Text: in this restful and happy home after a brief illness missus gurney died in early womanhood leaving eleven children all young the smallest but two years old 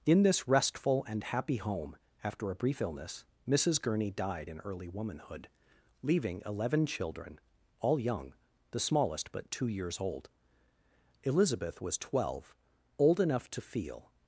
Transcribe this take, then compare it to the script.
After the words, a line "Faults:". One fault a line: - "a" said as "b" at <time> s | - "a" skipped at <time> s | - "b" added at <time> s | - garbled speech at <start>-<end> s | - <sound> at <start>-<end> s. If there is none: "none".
in this restful and happy home after a brief illness missus gurney died in early womanhood leaving eleven children all young the smallest but two years old elizabeth was twelve old enough to feel
Faults:
- "elizabeth was twelve old enough to feel" added at 11.2 s